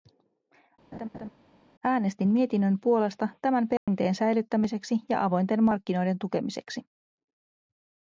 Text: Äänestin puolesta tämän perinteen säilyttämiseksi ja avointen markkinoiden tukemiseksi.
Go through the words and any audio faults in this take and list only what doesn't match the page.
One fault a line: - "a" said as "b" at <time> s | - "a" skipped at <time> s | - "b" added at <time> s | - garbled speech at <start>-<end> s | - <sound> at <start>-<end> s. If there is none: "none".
- laugh at 0.9-1.3 s
- "mietinnön" added at 2.3 s
- dropout at 3.8-3.9 s